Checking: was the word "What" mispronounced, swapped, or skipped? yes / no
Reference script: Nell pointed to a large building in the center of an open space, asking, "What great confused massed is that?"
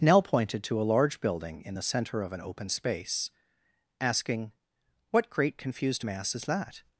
no